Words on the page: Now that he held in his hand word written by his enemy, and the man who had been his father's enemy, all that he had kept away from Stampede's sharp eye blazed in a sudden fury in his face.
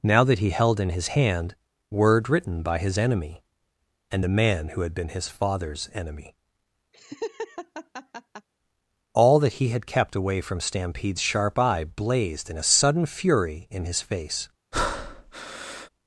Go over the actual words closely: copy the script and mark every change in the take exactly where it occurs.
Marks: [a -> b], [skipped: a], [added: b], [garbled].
Now that he held in his hand word written by his enemy, and the man who had been his father's enemy, all that he had kept away from Stampede's sharp eye blazed in a sudden fury in his face.